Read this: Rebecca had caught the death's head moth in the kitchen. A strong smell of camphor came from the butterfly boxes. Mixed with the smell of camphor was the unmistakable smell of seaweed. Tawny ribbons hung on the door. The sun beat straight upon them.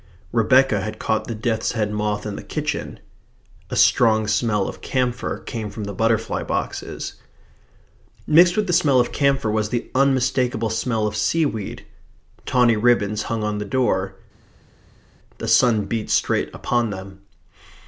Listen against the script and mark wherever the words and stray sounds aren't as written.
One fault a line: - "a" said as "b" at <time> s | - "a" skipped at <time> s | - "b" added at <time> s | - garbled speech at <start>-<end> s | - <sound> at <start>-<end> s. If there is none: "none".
none